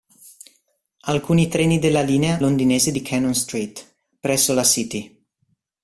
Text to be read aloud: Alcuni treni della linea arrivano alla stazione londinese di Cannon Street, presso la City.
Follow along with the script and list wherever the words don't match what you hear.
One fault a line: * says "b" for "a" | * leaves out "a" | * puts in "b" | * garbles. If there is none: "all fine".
* leaves out "arrivano alla stazione"